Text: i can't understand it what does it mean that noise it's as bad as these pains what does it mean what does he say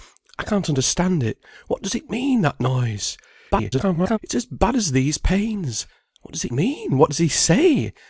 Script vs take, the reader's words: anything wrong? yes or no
yes